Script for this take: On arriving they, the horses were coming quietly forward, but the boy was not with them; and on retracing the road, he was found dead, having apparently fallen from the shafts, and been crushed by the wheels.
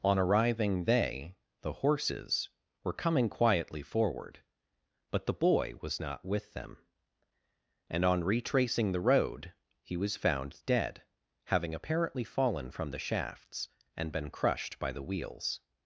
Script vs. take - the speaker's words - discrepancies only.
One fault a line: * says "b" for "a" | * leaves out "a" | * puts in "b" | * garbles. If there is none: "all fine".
all fine